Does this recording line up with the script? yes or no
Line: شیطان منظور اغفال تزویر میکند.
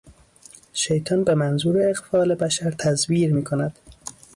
no